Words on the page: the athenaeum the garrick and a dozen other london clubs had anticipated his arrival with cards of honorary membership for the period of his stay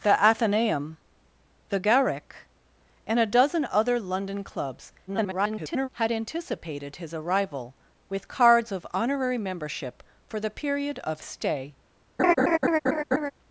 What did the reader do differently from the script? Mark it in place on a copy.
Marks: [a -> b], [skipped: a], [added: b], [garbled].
the athenaeum the garrick and a dozen other london clubs [garbled] had anticipated his arrival with cards of honorary membership for the period of [skipped: his] stay